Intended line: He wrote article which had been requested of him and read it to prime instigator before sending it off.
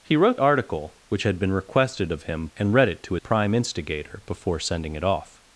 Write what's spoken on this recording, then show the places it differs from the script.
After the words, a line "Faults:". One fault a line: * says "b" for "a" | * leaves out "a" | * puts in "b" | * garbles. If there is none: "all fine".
He wrote article which had been requested of him and read it to prime instigator before sending it off.
Faults:
all fine